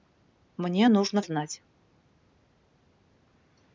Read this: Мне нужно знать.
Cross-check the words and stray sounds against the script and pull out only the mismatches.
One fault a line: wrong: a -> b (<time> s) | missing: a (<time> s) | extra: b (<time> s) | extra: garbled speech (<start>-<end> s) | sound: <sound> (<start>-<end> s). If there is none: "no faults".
no faults